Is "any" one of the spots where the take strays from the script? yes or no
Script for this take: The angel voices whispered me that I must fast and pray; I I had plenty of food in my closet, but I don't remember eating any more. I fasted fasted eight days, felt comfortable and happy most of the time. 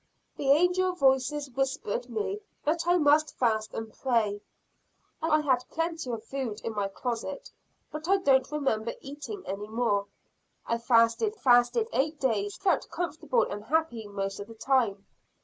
no